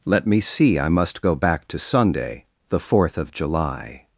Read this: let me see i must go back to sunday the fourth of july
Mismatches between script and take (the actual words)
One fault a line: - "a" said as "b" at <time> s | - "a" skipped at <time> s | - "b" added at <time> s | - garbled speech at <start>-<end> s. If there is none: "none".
none